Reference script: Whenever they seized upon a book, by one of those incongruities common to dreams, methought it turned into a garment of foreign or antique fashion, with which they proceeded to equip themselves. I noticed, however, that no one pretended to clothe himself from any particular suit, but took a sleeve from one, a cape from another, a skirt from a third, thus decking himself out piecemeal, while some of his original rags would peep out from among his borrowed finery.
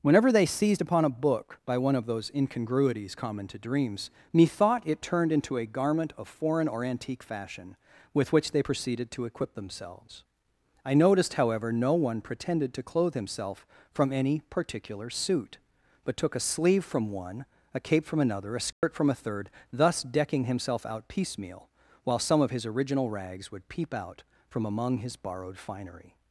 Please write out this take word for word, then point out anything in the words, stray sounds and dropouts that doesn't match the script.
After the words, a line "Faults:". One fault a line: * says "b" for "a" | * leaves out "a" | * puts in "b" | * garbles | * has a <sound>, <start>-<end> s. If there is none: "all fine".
Whenever they seized upon a book, by one of those incongruities common to dreams, methought it turned into a garment of foreign or antique fashion, with which they proceeded to equip themselves. I noticed, however, no one pretended to clothe himself from any particular suit, but took a sleeve from one, a cape from another, a skirt from a third, thus decking himself out piecemeal, while some of his original rags would peep out from among his borrowed finery.
Faults:
* leaves out "that"
* has a dropout, 18.7-18.8 s